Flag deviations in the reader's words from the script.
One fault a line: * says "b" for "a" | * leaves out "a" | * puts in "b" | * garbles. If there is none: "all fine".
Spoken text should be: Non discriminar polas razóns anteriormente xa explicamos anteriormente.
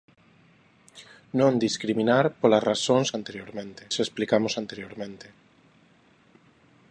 all fine